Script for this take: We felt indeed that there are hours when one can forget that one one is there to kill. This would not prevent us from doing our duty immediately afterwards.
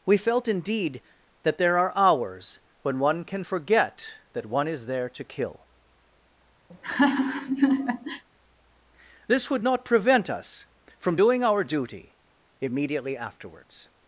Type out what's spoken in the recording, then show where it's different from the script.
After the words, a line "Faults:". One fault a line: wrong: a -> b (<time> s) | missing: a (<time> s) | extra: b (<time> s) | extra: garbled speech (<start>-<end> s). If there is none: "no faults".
We felt indeed that there are hours when one can forget that one is there to kill. This would not prevent us from doing our duty immediately afterwards.
Faults:
missing: one (4.7 s)